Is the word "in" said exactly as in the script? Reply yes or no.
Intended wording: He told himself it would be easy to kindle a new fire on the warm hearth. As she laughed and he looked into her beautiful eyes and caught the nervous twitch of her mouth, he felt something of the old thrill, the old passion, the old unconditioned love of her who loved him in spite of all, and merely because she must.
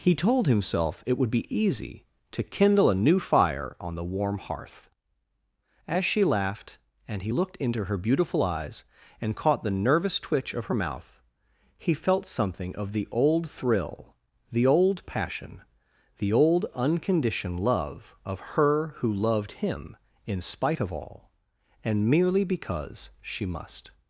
yes